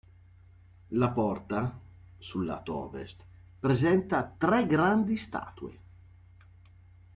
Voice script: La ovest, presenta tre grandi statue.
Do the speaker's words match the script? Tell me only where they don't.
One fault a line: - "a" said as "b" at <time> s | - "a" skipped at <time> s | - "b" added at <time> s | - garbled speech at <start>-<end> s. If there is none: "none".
- "porta sul lato" added at 1.1 s